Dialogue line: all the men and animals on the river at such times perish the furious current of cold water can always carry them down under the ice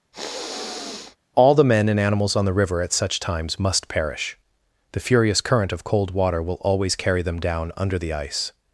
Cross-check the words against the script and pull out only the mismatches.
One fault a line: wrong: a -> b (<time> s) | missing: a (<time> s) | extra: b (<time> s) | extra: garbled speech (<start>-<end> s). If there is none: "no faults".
extra: must (3.6 s)
wrong: can -> will (6.4 s)